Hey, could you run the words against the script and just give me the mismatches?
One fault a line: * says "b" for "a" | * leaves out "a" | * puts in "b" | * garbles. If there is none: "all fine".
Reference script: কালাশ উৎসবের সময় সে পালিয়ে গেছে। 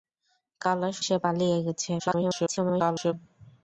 * leaves out "উৎসবের সময়"
* garbles